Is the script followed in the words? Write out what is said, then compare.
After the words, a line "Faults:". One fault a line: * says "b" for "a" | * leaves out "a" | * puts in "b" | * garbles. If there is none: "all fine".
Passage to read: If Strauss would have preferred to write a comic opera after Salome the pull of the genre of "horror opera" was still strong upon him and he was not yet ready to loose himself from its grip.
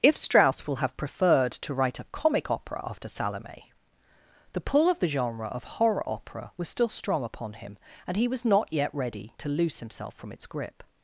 If Strauss will have preferred to write a comic opera after Salome the pull of the genre of "horror opera" was still strong upon him and he was not yet ready to loose himself from its grip.
Faults:
* says "will" for "would"